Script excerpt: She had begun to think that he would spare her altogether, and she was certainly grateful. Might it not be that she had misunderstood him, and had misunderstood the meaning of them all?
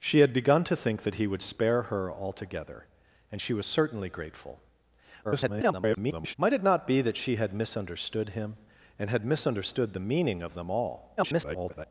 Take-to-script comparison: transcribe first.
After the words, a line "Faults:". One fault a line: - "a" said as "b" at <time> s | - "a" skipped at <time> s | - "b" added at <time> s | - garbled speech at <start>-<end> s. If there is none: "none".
She had begun to think that he would spare her altogether, and she was certainly grateful. [garbled] Might it not be that she had misunderstood him, and had misunderstood the meaning of them all? [garbled]
Faults:
- garbled speech at 5.2-6.3 s
- garbled speech at 11.2-11.9 s